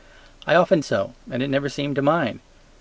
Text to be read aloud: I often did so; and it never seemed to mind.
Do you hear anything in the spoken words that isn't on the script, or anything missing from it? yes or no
yes